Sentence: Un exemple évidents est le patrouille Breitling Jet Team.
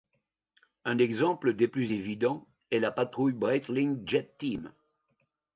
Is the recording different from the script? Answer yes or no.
yes